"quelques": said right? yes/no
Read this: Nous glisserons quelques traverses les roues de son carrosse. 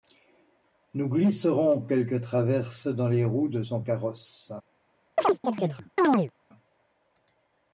yes